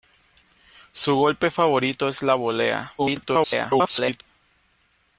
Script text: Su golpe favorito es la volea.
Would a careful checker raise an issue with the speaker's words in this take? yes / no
yes